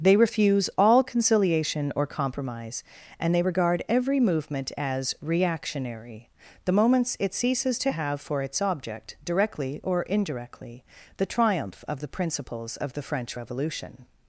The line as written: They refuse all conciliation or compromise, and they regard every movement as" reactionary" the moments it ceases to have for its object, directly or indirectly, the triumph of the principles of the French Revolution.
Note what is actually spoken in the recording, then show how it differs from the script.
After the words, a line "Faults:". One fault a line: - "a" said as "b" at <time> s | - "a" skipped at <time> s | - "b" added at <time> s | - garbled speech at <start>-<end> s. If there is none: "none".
They refuse all conciliation or compromise, and they regard every movement as" reactionary" the moments it ceases to have for its object, directly or indirectly, the triumph of the principles of the French Revolution.
Faults:
none